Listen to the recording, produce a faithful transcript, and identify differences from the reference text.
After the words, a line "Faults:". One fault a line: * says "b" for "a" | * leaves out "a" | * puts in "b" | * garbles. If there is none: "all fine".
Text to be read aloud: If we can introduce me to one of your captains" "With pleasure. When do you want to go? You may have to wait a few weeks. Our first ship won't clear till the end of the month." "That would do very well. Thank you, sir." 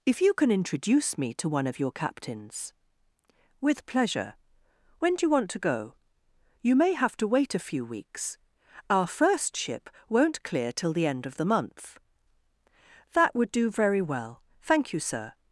If you can introduce me to one of your captains" "With pleasure. When do you want to go? You may have to wait a few weeks. Our first ship won't clear till the end of the month." "That would do very well. Thank you, sir."
Faults:
* says "you" for "we"